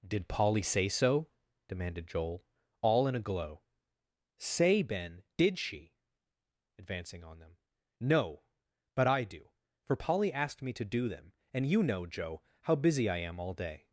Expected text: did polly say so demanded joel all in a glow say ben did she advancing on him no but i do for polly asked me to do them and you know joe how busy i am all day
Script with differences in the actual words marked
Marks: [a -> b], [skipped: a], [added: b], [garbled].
did polly say so demanded joel all in a glow say ben did she advancing on [him -> them] no but i do for polly asked me to do them and you know joe how busy i am all day